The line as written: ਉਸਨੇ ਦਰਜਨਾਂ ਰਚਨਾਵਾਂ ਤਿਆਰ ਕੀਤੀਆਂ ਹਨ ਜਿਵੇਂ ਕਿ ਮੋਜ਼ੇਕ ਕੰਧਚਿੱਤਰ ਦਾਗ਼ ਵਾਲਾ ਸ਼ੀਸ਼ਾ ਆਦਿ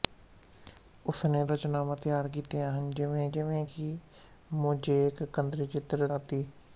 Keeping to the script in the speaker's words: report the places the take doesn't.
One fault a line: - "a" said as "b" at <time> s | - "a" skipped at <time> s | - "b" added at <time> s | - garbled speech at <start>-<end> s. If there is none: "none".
- "ਦਰਜਨਾਂ" skipped at 1.4 s
- "ਜਿਵੇਂ" added at 3.3 s
- "ਦਾਗ਼ ਵਾਲਾ ਸ਼ੀਸ਼ਾ" skipped at 6.1 s